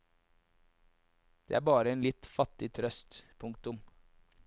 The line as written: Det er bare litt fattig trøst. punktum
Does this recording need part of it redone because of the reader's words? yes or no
yes